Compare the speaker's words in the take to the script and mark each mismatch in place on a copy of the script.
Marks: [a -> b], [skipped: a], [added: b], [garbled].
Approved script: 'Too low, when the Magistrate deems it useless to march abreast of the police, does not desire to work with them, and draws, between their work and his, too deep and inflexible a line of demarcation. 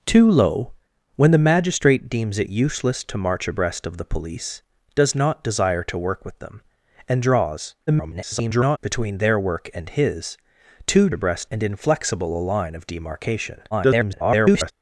'Too low, when the Magistrate deems it useless to march abreast of the police, does not desire to work with them, and draws, [garbled] between their work and his, too [deep -> abreast] and inflexible a line of demarcation. [garbled]